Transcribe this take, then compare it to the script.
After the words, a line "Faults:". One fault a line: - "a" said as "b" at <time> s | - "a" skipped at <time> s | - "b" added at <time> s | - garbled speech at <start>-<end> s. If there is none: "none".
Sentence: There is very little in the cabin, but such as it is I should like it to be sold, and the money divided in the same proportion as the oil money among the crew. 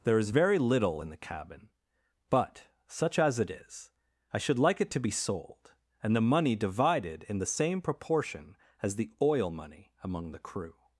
There is very little in the cabin, but such as it is I should like it to be sold, and the money divided in the same proportion as the oil money among the crew.
Faults:
none